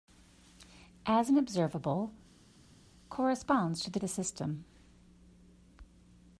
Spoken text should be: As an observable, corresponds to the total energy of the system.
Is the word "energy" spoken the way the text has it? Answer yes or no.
no